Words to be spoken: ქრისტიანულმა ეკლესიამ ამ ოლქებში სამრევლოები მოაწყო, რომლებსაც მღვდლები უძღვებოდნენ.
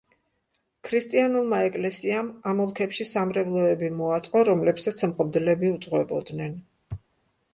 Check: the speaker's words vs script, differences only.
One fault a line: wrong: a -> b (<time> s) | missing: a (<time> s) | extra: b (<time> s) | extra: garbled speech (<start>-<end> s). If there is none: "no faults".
no faults